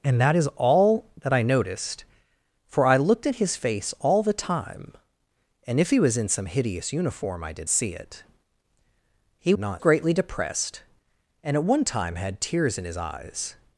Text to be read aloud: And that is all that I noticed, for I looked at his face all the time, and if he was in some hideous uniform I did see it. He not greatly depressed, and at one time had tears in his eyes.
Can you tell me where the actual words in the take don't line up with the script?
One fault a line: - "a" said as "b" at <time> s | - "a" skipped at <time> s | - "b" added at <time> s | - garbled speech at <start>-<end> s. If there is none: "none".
none